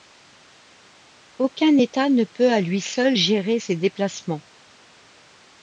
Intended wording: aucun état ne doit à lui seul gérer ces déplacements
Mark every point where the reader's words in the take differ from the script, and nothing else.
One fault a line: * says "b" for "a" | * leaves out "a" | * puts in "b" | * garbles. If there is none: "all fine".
* says "peut" for "doit"